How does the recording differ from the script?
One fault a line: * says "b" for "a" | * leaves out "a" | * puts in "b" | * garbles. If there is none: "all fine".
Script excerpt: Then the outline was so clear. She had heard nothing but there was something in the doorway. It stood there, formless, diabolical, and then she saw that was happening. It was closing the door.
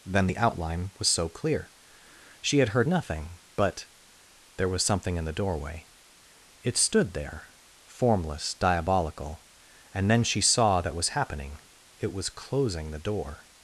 all fine